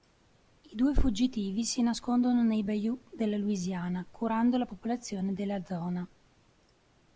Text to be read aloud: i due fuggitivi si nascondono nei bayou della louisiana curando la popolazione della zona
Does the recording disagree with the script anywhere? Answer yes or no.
no